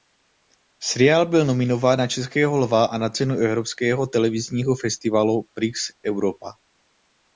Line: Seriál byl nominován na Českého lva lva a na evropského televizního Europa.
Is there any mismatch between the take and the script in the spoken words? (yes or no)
yes